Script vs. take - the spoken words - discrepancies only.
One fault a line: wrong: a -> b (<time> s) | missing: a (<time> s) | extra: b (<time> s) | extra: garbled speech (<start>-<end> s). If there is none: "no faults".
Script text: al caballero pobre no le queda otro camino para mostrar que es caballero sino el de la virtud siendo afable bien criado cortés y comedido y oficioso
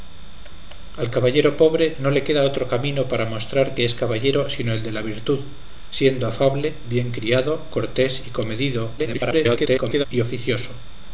extra: garbled speech (9.0-10.1 s)